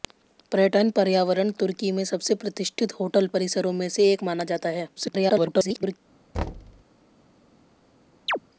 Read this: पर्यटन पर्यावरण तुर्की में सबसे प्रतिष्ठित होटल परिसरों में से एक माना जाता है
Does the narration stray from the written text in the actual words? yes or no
yes